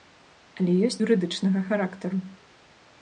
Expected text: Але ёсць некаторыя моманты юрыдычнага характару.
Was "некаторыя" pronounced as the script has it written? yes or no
no